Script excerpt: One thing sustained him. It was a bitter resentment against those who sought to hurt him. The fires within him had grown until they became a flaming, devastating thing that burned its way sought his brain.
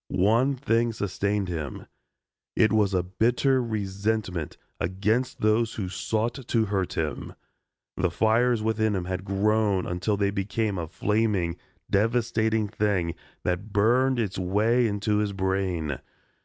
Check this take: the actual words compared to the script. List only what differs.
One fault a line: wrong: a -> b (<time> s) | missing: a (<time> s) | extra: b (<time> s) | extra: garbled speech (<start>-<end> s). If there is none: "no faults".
wrong: sought -> into (14.8 s)